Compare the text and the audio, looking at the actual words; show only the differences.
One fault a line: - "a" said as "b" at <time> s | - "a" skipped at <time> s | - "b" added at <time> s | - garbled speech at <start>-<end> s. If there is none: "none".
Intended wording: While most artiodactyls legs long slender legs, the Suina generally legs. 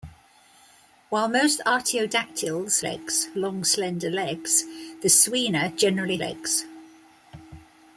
none